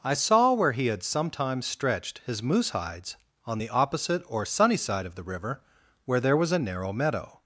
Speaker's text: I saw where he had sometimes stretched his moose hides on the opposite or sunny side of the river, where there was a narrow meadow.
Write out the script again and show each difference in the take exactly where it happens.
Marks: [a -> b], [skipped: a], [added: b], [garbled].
I saw where he had sometimes stretched his moose hides on the opposite or sunny side of the river, where there was a narrow meadow.